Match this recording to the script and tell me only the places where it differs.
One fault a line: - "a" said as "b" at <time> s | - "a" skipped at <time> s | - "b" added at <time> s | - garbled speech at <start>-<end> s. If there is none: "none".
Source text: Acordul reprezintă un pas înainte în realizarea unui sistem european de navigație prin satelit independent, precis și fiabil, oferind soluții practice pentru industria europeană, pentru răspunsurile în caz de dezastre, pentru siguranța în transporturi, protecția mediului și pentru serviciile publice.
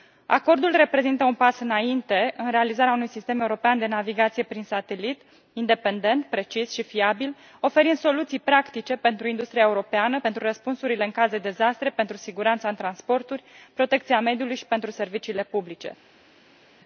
none